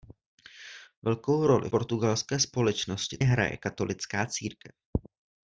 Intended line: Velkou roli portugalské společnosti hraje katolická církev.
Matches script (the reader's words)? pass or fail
pass